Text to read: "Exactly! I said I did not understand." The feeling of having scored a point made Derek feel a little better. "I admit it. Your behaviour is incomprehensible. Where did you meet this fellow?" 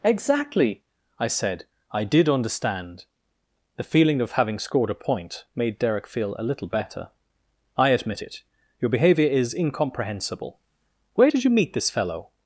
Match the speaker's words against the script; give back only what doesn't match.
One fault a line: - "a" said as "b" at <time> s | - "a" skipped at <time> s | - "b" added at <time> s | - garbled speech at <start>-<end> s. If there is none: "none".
- "not" skipped at 2.3 s